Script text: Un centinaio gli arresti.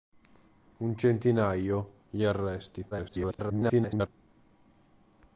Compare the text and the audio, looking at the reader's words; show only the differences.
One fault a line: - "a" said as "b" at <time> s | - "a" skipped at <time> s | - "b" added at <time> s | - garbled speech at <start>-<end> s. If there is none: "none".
- garbled speech at 2.9-4.1 s